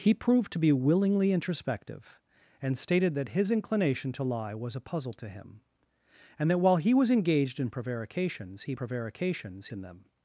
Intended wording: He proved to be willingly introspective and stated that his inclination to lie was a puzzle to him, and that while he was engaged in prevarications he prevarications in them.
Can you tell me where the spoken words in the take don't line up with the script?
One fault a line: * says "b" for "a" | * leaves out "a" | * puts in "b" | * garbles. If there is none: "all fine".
all fine